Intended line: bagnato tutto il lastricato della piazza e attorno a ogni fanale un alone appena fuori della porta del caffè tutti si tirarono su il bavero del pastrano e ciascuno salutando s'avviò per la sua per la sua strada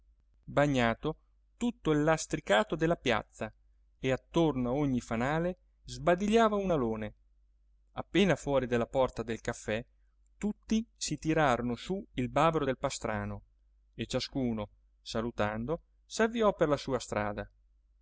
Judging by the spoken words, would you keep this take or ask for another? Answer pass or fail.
fail